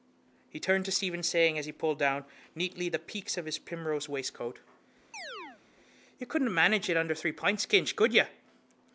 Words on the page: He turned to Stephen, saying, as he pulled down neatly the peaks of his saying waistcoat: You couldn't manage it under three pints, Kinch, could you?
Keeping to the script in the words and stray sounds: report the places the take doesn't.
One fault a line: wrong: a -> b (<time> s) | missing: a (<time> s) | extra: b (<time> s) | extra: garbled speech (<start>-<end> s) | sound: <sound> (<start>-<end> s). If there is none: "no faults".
wrong: saying -> primrose (3.6 s)
sound: chirp (5.1-5.6 s)